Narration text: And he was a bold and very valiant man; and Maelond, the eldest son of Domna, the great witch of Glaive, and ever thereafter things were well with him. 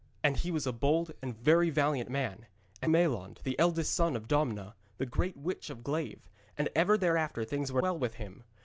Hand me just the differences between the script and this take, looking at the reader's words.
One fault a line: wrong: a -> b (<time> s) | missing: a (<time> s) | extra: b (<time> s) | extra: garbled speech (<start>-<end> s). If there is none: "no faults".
no faults